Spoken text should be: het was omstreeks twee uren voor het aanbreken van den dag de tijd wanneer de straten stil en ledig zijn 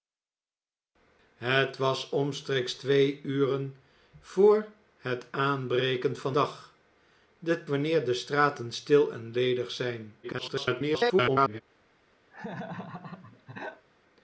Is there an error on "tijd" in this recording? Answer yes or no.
yes